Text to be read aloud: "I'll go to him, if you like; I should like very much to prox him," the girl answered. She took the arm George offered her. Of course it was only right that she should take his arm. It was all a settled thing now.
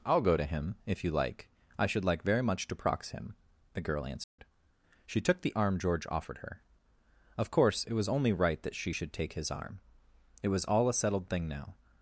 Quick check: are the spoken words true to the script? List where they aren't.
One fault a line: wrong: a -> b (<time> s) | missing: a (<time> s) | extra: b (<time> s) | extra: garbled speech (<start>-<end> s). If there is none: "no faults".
no faults